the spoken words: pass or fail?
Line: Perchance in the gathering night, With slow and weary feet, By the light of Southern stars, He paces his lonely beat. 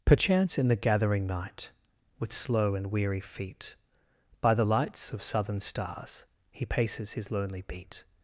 fail